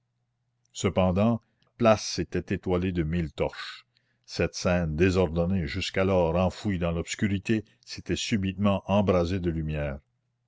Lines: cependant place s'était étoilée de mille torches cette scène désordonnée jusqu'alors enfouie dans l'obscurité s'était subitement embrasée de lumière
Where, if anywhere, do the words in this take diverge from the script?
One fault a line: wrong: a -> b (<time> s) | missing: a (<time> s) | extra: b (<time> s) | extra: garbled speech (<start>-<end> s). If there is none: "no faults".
no faults